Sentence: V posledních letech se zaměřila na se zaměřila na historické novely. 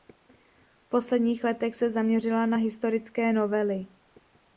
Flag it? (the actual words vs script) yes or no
yes